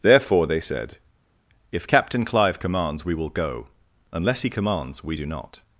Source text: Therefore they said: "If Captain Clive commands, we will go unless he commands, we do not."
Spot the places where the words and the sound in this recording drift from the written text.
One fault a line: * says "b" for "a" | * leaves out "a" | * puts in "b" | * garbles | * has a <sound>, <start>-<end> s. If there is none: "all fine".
all fine